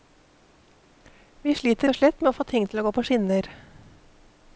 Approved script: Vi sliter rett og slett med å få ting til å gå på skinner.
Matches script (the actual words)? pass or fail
fail